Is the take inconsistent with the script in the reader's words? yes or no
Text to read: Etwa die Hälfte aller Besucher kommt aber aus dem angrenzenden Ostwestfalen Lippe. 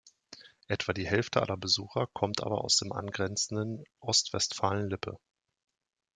no